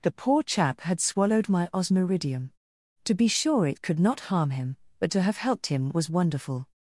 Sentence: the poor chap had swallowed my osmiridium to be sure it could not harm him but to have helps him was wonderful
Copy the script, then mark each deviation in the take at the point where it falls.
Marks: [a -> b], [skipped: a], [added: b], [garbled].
the poor chap had swallowed my osmiridium to be sure it could not harm him but to have [helps -> helped] him was wonderful